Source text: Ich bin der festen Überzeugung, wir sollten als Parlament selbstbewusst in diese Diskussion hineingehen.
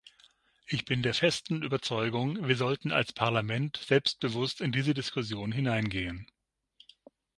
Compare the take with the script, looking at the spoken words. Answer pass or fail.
pass